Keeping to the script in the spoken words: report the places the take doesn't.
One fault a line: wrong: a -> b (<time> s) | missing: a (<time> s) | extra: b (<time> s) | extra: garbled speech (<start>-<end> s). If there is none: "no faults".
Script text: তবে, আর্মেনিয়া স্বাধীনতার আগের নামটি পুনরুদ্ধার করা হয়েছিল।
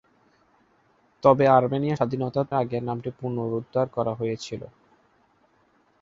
no faults